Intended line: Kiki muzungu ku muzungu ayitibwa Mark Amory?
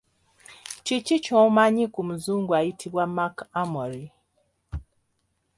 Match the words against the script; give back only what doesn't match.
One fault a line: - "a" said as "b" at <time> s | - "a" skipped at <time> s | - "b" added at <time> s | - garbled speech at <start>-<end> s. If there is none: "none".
- "muzungu" said as "ky'omanyi" at 1.2 s